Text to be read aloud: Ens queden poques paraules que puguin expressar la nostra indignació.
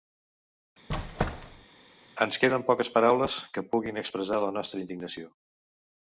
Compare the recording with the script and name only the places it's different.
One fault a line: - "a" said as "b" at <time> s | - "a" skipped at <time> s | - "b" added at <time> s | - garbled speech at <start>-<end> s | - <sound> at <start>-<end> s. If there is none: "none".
- squeak at 0.9-1.7 s